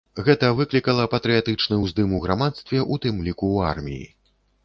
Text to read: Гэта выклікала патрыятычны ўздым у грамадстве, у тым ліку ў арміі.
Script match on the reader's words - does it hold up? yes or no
yes